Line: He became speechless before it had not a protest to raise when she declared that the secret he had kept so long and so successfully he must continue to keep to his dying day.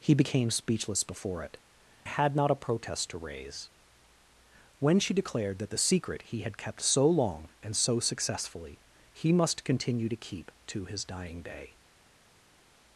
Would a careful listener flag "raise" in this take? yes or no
no